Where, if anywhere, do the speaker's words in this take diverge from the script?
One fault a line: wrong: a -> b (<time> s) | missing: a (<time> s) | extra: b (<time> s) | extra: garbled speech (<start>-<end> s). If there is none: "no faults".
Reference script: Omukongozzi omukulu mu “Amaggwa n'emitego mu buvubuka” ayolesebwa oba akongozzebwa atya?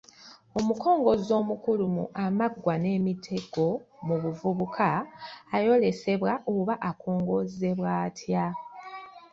no faults